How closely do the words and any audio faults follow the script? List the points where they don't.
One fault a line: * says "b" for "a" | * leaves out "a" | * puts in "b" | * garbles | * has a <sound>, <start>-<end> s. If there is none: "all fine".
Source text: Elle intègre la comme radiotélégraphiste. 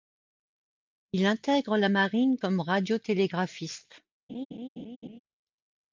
* says "Il" for "Elle"
* puts in "marine"
* has a laugh, 4.3-5.2 s